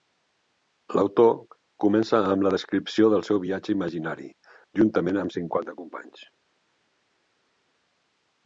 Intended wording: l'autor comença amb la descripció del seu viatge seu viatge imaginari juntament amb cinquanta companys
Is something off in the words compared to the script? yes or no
yes